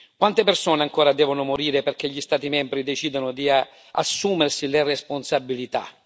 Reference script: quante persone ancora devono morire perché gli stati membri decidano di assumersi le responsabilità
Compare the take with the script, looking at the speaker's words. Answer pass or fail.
pass